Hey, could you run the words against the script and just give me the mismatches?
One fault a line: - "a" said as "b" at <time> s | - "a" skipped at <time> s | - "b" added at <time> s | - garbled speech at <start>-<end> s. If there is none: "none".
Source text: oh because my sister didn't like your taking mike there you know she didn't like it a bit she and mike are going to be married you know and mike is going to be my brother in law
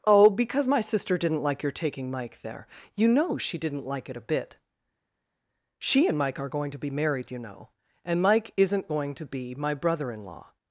- "is" said as "isn't" at 8.6 s